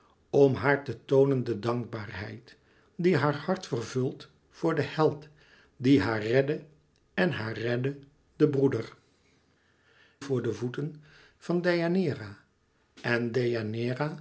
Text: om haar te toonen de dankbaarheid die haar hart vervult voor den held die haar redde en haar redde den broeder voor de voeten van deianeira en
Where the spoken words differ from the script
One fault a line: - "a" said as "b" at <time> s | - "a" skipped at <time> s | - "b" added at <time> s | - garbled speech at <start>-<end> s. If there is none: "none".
none